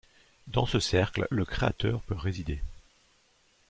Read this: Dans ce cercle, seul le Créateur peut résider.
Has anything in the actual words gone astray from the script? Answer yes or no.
yes